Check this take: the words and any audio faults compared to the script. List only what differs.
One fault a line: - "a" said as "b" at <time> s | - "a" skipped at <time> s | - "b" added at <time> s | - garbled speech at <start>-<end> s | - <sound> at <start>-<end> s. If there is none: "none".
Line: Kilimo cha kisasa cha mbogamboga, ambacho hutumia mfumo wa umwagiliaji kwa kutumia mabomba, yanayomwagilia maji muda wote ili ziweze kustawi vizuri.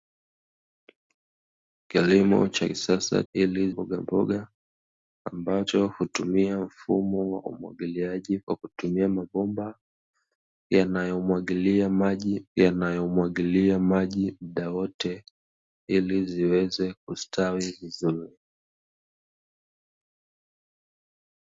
- "cha" said as "ili" at 3.3 s
- "yanayomwagilia maji" added at 12.6 s